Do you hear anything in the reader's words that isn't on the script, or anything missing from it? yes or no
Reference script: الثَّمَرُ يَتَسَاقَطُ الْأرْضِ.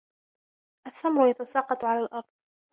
yes